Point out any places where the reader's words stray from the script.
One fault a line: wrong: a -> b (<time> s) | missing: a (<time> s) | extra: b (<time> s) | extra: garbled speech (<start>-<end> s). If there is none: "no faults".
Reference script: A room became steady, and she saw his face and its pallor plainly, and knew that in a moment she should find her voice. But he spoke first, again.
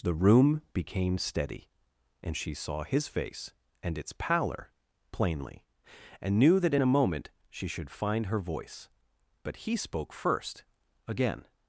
wrong: A -> The (0.0 s)